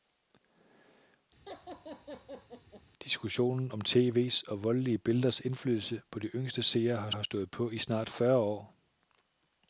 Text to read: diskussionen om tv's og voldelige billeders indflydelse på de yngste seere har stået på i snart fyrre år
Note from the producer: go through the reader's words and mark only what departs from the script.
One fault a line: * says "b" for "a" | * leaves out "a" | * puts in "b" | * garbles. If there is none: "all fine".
* puts in "har"